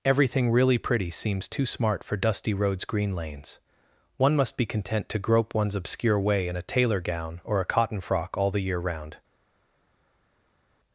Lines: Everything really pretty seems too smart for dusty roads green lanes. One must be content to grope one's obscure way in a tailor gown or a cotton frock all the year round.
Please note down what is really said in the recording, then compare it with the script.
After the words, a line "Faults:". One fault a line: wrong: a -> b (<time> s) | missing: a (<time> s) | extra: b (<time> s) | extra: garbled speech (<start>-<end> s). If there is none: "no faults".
Everything really pretty seems too smart for dusty roads green lanes. One must be content to grope one's obscure way in a tailor gown or a cotton frock all the year round.
Faults:
no faults